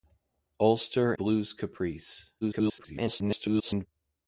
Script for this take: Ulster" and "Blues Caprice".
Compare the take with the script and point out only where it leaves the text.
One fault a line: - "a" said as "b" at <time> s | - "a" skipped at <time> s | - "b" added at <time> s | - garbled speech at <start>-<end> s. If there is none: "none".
- "and" skipped at 1.1 s
- garbled speech at 2.4-3.9 s